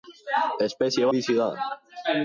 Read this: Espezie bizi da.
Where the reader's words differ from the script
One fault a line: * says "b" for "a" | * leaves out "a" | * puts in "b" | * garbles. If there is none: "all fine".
all fine